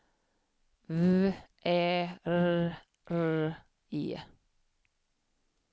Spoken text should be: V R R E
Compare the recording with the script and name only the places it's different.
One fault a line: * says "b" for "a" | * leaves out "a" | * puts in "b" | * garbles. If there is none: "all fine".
* puts in "Ä"